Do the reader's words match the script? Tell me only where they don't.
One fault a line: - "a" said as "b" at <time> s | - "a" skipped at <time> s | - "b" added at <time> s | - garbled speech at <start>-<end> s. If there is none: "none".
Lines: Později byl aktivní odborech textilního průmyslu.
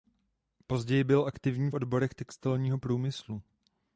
none